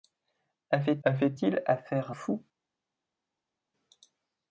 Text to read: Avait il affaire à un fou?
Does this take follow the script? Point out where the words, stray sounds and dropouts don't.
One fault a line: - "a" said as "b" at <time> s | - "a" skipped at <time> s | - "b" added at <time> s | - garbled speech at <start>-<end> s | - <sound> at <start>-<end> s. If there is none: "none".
- "avait" added at 1.0 s
- "un" skipped at 2.1 s